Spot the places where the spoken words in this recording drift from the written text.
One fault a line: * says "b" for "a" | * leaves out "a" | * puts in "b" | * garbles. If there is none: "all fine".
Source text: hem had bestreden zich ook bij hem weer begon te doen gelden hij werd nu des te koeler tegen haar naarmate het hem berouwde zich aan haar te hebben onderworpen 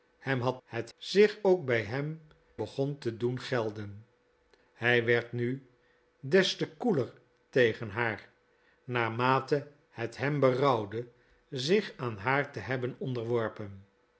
* says "het" for "bestreden"
* leaves out "weer"